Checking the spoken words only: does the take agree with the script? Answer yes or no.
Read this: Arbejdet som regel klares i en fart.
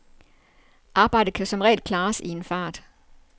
no